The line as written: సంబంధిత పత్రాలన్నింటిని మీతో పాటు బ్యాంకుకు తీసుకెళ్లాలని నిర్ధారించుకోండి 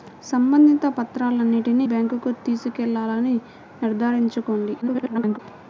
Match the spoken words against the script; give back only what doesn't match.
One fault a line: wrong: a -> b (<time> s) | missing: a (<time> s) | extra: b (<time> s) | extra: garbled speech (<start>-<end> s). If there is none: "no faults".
missing: మీతో పాటు (1.9 s)
extra: garbled speech (4.8-5.4 s)